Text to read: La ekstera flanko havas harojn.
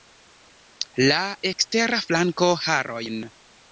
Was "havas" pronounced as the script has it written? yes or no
no